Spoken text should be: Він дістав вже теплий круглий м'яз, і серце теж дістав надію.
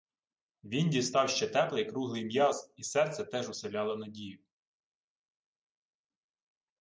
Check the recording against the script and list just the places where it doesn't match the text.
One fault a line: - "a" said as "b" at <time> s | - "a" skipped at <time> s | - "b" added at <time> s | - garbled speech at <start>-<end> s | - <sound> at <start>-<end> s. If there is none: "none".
- "вже" said as "ще" at 1.3 s
- "дістав" said as "уселяло" at 3.5 s